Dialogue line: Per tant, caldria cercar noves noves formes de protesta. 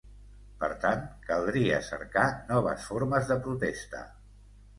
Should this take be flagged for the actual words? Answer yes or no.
yes